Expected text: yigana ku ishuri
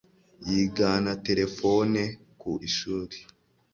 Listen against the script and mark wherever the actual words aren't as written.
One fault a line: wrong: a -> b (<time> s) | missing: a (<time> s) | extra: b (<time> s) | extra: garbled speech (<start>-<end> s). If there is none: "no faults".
extra: terefone (1.2 s)